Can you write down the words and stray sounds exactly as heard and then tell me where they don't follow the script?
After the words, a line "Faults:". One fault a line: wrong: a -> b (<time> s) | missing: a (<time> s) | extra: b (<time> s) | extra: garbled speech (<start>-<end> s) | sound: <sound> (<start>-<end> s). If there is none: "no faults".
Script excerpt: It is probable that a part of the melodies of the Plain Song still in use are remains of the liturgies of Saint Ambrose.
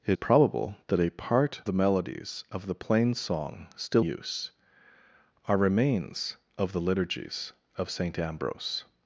It probable that a part the melodies of the Plain Song still use are remains of the liturgies of Saint Ambrose.
Faults:
missing: is (0.2 s)
missing: of (1.6 s)
missing: in (4.1 s)